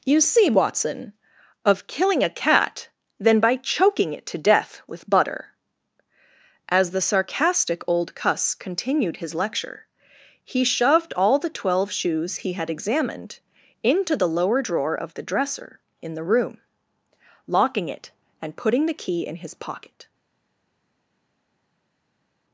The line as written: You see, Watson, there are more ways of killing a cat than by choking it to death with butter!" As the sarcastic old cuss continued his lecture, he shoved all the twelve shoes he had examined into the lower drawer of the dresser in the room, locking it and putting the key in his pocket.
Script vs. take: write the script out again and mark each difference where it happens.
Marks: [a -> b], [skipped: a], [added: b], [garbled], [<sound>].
You see, Watson, [skipped: there are more ways] of killing a cat than by choking it to death with butter!" As the sarcastic old cuss continued his lecture, he shoved all the twelve shoes he had examined into the lower drawer of the dresser in the room, locking it and putting the key in his pocket.